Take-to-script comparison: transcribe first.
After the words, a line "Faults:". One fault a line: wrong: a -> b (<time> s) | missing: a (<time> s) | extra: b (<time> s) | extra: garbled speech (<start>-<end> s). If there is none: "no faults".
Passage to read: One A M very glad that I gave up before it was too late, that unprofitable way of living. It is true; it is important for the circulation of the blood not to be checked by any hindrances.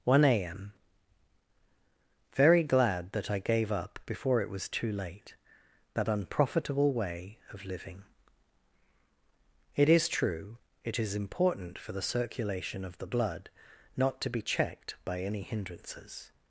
One A M very glad that I gave up before it was too late, that unprofitable way of living. It is true; it is important for the circulation of the blood not to be checked by any hindrances.
Faults:
no faults